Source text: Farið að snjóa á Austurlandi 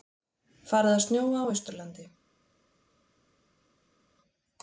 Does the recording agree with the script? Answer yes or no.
yes